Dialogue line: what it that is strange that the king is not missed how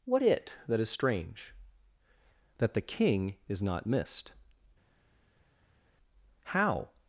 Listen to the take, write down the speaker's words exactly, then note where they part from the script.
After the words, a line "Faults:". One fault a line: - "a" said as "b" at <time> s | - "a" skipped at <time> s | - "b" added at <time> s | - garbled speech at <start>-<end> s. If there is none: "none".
what it that is strange that the king is not missed how
Faults:
none